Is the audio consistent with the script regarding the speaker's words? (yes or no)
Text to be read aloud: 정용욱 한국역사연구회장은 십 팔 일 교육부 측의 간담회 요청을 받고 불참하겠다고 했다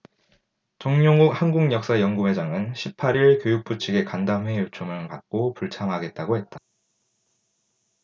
yes